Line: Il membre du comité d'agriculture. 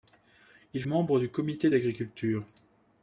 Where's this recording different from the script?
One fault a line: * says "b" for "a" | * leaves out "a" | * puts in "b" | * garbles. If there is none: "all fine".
all fine